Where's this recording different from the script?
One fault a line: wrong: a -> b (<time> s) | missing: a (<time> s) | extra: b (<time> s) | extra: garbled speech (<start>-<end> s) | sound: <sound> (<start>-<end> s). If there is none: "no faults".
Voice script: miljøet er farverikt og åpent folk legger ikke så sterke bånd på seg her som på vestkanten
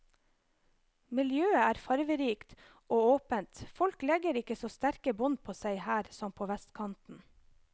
no faults